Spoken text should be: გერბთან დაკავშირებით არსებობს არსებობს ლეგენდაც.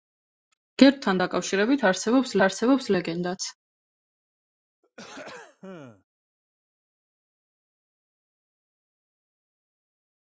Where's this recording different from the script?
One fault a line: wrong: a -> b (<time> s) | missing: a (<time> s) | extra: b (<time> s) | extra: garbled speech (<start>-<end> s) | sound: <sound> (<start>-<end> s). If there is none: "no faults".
sound: throat clearing (4.8-6.0 s)